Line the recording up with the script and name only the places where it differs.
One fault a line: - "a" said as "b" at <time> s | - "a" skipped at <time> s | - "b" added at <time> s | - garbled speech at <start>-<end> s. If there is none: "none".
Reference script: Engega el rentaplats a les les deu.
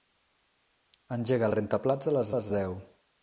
none